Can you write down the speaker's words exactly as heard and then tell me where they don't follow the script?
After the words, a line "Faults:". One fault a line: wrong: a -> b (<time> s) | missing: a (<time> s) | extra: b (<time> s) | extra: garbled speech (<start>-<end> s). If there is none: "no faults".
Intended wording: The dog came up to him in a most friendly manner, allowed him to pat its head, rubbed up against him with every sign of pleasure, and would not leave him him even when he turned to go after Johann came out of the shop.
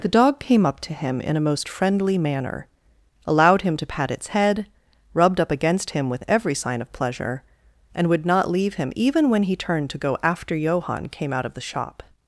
The dog came up to him in a most friendly manner, allowed him to pat its head, rubbed up against him with every sign of pleasure, and would not leave him even when he turned to go after Johann came out of the shop.
Faults:
missing: him (8.9 s)